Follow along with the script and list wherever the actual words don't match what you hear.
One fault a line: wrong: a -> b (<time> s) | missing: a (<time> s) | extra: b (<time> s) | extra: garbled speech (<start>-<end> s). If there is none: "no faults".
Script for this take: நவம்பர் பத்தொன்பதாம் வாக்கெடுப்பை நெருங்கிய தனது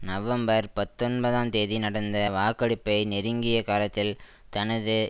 extra: தேதி நடந்த (1.5 s)
extra: காலத்தில் (3.6 s)